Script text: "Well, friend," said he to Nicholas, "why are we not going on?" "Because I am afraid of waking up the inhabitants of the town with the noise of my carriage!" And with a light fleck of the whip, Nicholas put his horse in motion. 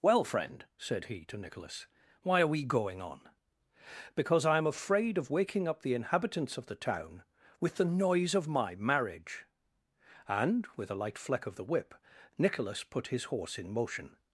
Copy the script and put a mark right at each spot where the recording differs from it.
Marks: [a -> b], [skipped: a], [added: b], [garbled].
"Well, friend," said he to Nicholas, "why are we [skipped: not] going on?" "Because I am afraid of waking up the inhabitants of the town with the noise of my [carriage!" -> marriage] And with a light fleck of the whip, Nicholas put his horse in motion.